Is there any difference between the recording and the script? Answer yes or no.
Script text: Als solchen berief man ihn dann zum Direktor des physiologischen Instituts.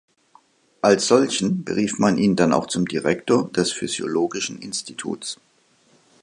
yes